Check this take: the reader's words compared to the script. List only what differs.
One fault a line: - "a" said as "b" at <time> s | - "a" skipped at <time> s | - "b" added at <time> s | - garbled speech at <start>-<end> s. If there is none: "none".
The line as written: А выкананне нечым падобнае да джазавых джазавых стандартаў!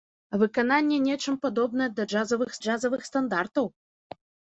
none